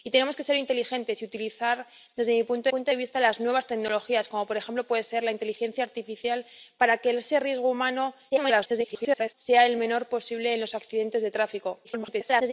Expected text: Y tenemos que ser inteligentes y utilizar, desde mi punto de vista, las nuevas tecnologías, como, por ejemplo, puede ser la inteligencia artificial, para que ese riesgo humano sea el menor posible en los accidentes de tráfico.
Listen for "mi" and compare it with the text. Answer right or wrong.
right